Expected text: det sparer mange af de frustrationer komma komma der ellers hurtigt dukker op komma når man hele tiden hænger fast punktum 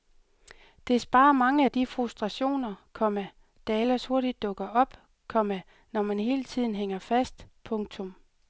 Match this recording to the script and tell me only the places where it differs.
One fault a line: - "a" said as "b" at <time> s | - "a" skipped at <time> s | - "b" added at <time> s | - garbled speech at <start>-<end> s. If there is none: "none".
- "komma" skipped at 3.3 s